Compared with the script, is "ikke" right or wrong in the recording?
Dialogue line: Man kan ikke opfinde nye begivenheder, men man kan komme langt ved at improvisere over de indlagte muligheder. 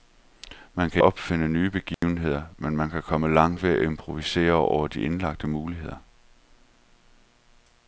wrong